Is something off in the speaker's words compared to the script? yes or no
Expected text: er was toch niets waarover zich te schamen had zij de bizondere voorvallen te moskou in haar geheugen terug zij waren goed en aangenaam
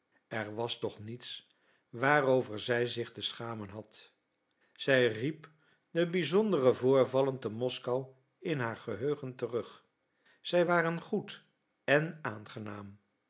yes